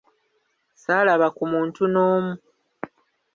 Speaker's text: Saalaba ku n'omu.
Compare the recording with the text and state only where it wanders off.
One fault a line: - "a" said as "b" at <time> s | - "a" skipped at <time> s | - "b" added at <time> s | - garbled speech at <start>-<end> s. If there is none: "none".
- "muntu" added at 1.5 s